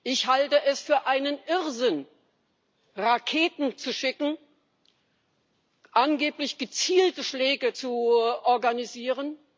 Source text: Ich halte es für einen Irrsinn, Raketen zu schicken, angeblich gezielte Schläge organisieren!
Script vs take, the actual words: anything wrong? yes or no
yes